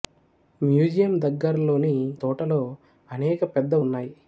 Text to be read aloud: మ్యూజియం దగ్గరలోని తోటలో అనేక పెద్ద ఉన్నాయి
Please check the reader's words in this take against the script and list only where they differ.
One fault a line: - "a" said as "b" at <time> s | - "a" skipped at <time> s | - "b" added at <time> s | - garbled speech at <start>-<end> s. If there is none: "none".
none